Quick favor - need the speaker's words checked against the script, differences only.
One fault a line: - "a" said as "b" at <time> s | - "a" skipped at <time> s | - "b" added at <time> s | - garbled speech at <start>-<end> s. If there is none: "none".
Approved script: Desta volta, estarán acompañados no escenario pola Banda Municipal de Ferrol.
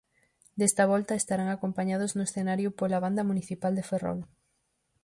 none